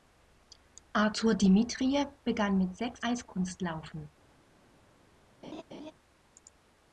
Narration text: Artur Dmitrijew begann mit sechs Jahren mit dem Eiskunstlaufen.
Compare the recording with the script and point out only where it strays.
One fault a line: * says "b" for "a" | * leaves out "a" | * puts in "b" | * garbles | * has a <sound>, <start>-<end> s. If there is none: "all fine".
* leaves out "Jahren mit dem"
* has a laugh, 5.4-5.9 s